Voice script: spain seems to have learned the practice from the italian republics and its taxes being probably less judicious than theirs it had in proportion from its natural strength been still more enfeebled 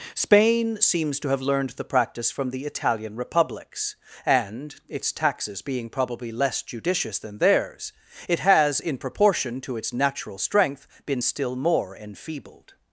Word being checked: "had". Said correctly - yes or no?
no